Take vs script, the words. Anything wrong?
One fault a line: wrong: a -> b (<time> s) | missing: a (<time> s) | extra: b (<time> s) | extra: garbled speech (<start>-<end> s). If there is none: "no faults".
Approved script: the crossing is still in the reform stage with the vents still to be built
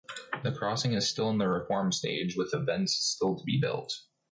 no faults